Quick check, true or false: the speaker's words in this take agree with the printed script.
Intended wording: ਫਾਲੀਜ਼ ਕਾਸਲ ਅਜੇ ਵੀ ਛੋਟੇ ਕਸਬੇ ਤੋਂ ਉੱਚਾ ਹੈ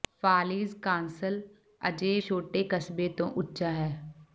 false